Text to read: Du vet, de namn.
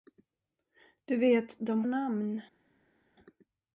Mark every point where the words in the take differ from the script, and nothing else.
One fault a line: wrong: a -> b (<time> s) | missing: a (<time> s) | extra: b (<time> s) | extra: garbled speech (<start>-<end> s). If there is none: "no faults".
no faults